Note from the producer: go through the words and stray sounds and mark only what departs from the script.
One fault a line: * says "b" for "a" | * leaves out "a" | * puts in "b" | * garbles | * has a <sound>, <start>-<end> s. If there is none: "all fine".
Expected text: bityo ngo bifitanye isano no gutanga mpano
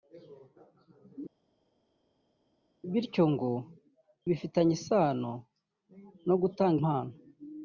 all fine